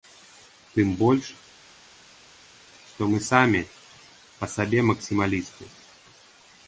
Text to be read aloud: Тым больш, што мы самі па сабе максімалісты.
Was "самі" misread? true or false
false